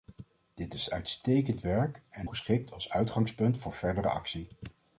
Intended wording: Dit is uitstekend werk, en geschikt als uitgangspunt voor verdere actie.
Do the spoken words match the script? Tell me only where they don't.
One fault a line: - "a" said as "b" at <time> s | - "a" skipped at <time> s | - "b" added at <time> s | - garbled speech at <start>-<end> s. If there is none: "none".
none